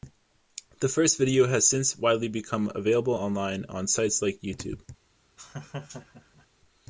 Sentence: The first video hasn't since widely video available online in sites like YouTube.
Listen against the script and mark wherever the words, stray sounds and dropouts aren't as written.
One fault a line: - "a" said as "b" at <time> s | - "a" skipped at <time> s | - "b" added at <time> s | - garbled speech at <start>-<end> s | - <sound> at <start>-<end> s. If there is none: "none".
- "hasn't" said as "has" at 1.4 s
- "video" said as "become" at 2.3 s
- "in" said as "on" at 3.6 s
- laugh at 5.4-6.5 s